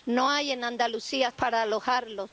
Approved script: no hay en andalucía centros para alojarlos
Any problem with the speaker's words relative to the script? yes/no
yes